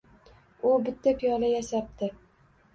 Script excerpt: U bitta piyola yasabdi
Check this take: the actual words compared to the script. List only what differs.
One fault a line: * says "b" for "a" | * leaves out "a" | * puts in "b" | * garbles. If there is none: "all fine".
all fine